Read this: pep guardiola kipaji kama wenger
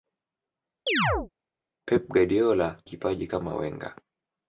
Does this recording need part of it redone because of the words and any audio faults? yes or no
yes